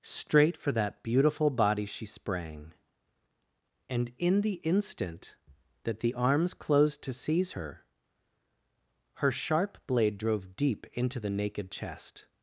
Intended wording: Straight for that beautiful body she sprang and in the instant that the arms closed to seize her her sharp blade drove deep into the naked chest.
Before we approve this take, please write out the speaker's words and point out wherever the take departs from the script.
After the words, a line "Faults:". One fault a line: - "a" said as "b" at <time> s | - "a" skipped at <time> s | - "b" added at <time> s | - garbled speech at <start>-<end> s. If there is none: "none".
Straight for that beautiful body she sprang and in the instant that the arms closed to seize her her sharp blade drove deep into the naked chest.
Faults:
none